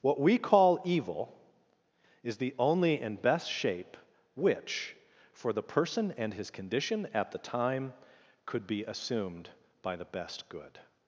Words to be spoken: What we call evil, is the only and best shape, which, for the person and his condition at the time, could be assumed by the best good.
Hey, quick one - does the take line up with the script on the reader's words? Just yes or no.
yes